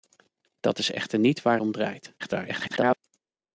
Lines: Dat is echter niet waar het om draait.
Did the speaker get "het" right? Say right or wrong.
wrong